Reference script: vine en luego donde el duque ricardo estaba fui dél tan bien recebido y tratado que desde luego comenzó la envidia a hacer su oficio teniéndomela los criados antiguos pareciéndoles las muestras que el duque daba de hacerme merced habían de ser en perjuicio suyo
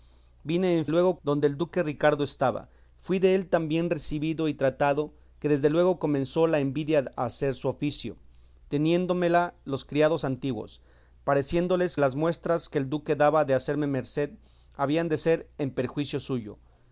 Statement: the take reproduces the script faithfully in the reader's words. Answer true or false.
true